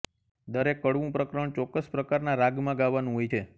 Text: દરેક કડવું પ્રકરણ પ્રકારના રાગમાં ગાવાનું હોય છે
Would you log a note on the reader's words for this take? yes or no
yes